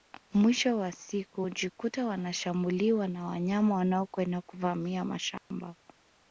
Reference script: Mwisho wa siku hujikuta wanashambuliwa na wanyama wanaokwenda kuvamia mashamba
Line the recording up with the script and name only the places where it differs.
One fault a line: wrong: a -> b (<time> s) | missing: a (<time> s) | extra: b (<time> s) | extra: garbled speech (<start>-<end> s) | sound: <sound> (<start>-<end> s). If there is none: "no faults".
sound: dropout (5.4-5.5 s)